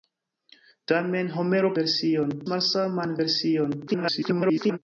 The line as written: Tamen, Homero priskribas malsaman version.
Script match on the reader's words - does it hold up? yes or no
no